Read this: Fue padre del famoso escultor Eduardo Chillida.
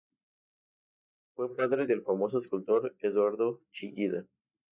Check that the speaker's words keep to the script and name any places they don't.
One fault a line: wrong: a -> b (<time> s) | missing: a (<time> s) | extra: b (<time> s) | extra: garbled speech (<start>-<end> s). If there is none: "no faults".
no faults